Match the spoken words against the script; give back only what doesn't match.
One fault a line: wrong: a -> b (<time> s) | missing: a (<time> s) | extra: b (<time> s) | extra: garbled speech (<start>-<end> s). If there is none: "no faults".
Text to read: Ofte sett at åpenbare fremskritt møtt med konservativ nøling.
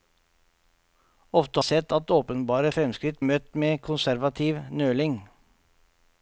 no faults